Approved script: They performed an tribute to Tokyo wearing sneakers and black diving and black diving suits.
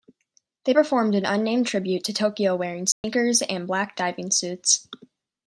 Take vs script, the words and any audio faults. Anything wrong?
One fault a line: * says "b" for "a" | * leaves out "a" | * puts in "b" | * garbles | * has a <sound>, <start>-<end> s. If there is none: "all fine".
* puts in "unnamed"
* has a dropout, 2.9-3.0 s
* leaves out "and black diving"